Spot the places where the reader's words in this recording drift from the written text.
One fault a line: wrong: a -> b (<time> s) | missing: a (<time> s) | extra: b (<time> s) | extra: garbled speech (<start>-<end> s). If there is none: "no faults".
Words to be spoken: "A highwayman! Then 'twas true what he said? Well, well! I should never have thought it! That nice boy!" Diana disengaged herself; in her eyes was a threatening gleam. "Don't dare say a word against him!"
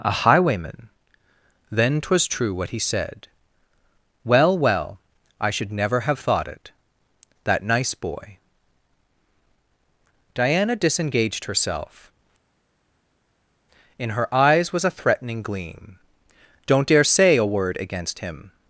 no faults